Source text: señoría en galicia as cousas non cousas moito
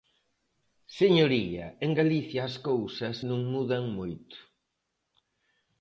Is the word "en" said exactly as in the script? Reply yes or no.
yes